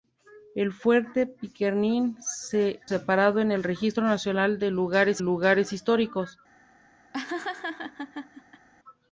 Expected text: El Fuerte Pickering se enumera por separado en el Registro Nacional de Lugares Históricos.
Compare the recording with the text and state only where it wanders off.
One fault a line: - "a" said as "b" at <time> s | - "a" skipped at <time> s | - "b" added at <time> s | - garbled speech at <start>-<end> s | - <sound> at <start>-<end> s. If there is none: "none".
- "enumera por" skipped at 2.8 s
- "Lugares" added at 5.2 s
- laugh at 7.1-8.7 s